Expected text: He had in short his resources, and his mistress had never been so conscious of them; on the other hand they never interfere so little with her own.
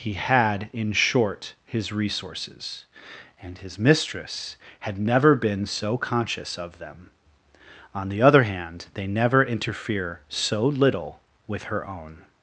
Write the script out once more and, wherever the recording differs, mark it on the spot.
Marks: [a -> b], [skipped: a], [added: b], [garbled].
He had in short his resources, and his mistress had never been so conscious of them; on the other hand they never interfere so little with her own.